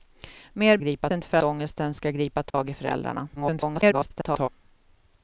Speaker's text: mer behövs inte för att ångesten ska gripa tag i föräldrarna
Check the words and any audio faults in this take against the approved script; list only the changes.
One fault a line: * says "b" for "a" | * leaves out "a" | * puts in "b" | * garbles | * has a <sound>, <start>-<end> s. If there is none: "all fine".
* says "gripa" for "behövs"
* leaves out "att"
* has a dropout, 2.5-2.5 s
* garbles